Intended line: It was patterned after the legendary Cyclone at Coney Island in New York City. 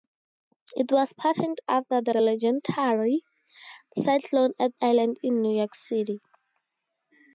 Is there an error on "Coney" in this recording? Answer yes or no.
yes